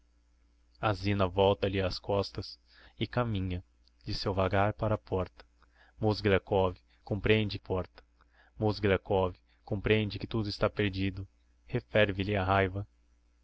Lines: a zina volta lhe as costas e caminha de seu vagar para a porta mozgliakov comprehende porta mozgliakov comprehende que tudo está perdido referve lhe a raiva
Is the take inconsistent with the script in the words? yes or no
no